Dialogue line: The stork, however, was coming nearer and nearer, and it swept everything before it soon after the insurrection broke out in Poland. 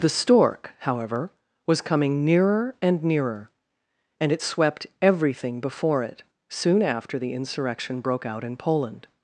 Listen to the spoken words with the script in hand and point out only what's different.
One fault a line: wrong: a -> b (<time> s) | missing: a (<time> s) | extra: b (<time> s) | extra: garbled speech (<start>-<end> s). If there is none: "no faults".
no faults